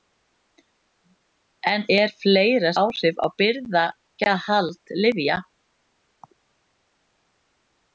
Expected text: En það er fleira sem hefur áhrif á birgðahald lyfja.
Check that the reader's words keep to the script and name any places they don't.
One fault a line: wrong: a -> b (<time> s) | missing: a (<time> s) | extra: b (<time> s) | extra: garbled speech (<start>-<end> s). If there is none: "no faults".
missing: það (1.8 s)
missing: sem hefur (2.7 s)